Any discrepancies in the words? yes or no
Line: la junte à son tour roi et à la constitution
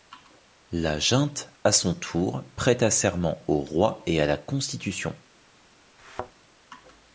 yes